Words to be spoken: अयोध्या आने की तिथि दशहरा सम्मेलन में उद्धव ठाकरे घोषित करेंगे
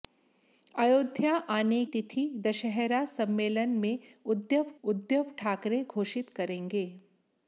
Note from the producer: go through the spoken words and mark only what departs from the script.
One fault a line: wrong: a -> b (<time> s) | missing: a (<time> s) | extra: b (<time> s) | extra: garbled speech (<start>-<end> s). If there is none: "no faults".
missing: की (1.8 s)
extra: उद्धव (4.8 s)